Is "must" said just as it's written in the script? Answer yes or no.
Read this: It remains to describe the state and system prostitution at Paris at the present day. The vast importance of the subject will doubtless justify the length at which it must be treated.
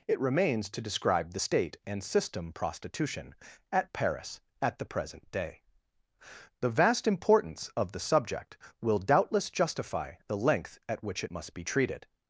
yes